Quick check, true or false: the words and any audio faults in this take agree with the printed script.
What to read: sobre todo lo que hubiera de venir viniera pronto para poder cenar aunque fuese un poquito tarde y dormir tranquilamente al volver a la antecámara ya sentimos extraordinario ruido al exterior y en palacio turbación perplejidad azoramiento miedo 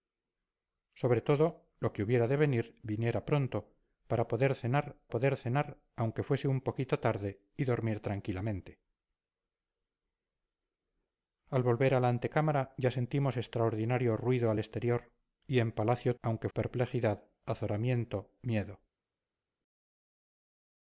false